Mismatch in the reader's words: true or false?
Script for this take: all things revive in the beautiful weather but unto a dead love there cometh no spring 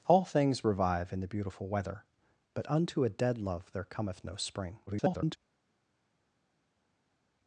true